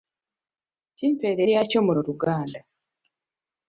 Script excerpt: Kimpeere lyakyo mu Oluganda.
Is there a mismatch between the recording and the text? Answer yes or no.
no